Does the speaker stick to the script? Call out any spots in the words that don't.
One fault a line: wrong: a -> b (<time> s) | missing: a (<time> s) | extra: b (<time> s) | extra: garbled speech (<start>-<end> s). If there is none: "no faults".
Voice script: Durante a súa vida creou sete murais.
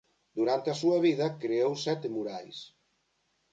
no faults